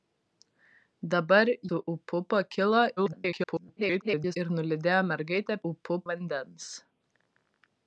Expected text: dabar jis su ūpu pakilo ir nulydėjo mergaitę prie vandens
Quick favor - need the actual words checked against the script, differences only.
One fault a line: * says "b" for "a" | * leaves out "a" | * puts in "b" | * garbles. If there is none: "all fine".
* leaves out "jis"
* garbles
* says "ūpu" for "prie"